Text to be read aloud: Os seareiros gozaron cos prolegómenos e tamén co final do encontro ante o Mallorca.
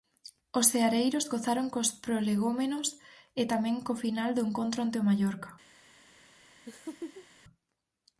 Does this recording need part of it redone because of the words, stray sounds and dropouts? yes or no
yes